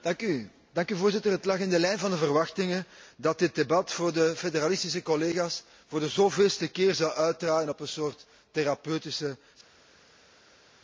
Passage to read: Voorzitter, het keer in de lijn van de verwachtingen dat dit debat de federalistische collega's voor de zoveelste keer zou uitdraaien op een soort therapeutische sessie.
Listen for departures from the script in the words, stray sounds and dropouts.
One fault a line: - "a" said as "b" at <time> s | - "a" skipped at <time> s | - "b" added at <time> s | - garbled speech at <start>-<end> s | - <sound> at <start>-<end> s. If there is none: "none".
- "keer" said as "lag" at 1.4 s
- "voor" added at 3.9 s